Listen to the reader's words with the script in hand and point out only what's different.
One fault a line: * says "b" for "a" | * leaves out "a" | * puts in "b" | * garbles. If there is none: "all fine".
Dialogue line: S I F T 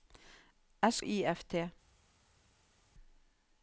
all fine